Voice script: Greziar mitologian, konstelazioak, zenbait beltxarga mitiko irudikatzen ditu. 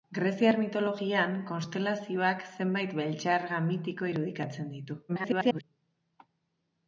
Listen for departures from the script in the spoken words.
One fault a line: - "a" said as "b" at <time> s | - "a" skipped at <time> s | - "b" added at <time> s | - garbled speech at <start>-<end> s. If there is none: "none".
- garbled speech at 5.1-5.6 s